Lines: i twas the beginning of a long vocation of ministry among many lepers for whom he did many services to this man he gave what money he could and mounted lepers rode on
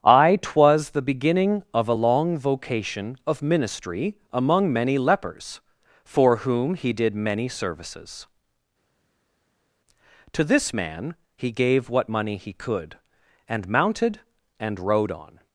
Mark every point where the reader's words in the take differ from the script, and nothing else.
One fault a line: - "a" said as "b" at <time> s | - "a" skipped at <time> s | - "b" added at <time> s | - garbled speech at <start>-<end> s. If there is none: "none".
- "lepers" said as "and" at 14.6 s